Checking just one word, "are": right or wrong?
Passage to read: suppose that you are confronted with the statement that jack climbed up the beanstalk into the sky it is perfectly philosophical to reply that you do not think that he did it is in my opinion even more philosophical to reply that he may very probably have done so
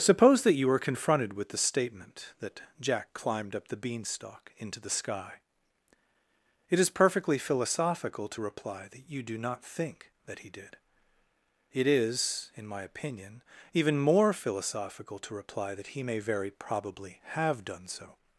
wrong